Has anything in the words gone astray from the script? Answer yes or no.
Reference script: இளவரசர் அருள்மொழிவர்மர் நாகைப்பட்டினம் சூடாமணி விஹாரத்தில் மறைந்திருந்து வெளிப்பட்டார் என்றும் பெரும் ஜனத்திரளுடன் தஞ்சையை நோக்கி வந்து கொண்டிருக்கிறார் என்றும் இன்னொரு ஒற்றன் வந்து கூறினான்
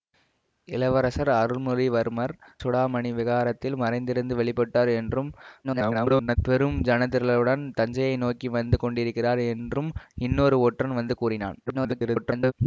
yes